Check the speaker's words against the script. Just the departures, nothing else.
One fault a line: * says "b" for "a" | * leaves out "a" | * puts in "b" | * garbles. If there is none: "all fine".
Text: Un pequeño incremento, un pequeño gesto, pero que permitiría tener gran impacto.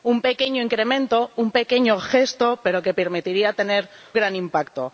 all fine